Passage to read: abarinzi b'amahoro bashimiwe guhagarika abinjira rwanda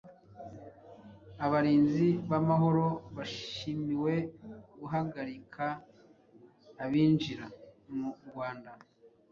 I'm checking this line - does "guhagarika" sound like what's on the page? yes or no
yes